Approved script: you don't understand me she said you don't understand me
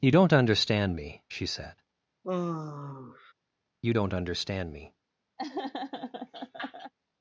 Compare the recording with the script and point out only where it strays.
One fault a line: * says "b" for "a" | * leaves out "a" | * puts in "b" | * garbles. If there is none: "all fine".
all fine